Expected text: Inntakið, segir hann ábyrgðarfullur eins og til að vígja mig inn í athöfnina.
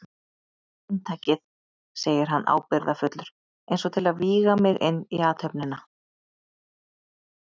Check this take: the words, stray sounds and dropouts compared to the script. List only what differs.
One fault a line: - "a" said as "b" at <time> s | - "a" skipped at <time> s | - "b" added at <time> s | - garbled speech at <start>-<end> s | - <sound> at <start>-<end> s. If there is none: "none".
none